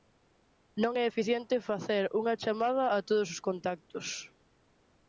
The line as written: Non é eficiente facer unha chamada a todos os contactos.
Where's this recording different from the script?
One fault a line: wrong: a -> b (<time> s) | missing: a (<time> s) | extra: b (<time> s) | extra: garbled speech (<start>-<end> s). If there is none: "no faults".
no faults